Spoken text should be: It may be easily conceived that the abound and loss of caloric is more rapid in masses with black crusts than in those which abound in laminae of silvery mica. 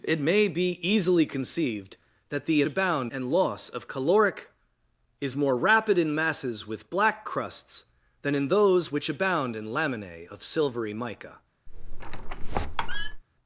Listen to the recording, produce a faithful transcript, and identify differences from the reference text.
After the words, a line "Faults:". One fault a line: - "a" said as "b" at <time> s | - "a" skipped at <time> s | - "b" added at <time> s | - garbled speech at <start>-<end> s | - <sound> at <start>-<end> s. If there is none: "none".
It may be easily conceived that the abound and loss of caloric is more rapid in masses with black crusts than in those which abound in laminae of silvery mica.
Faults:
- squeak at 11.7-13.2 s